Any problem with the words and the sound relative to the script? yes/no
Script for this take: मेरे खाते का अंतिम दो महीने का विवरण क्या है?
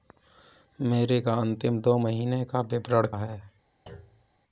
yes